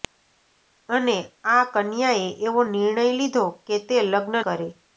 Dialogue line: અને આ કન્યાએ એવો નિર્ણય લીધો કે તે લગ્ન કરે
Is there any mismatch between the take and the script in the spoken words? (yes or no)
no